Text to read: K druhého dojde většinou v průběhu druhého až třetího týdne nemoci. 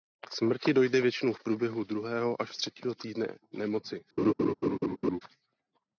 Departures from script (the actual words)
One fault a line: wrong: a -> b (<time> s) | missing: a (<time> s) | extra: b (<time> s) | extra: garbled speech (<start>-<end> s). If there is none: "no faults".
wrong: druhého -> smrti (0.3 s)